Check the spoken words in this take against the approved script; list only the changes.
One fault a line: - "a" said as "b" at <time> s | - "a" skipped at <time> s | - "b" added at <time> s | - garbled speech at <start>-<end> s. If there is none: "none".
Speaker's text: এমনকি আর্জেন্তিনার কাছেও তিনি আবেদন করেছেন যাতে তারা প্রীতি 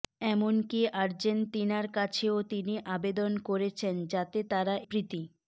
none